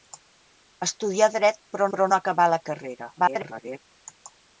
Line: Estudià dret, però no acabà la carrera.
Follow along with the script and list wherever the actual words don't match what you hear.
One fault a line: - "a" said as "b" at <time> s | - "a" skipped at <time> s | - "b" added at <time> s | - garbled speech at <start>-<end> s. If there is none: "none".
- "però" added at 1.9 s
- garbled speech at 3.2-3.8 s